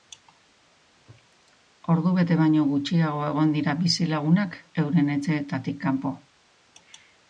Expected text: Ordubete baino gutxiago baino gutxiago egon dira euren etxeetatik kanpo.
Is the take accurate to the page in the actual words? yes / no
no